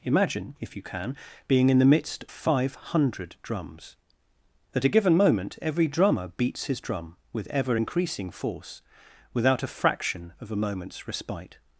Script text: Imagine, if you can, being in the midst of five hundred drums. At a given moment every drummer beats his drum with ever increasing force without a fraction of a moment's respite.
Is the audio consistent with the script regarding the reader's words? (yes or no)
no